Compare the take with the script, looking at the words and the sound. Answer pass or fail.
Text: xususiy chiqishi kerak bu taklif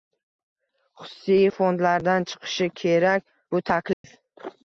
fail